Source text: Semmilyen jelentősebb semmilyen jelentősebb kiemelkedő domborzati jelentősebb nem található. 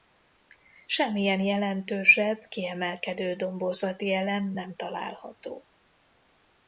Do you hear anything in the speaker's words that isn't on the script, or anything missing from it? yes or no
yes